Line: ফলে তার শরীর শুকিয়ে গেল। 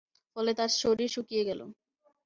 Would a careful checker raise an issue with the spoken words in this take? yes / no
no